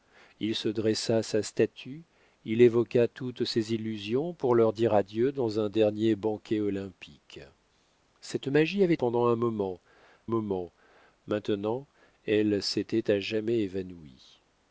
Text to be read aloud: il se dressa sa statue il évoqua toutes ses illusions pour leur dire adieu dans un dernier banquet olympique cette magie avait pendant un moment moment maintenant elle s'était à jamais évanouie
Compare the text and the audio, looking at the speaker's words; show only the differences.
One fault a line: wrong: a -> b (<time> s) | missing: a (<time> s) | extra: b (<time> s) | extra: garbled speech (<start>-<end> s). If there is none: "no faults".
no faults